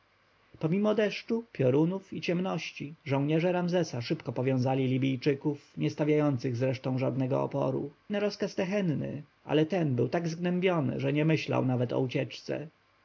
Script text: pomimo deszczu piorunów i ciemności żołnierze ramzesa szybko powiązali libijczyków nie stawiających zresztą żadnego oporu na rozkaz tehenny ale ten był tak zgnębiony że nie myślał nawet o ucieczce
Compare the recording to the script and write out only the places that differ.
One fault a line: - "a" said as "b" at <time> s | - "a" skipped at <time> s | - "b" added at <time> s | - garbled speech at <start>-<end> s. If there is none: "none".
none